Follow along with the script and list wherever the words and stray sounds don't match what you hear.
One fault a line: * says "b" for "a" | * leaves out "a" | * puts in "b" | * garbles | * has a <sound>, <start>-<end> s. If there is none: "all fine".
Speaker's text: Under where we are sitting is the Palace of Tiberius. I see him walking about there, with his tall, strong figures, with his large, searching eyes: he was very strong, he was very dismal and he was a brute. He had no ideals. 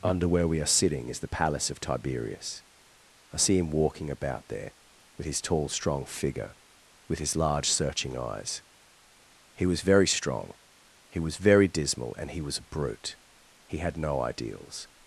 * says "figure" for "figures"